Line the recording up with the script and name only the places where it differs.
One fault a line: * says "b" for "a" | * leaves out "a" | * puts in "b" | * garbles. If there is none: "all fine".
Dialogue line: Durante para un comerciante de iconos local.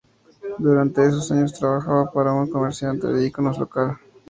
* puts in "esos años trabajaba"